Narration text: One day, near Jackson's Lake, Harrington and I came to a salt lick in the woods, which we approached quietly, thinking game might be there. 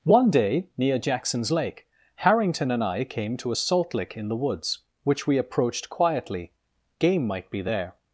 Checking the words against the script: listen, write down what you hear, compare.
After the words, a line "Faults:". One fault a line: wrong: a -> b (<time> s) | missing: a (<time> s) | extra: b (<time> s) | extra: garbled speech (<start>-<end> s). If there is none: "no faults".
One day, near Jackson's Lake, Harrington and I came to a salt lick in the woods, which we approached quietly, game might be there.
Faults:
missing: thinking (6.5 s)